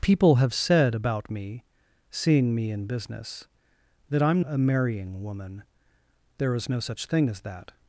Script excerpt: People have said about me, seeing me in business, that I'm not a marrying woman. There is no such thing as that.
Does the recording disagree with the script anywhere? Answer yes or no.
yes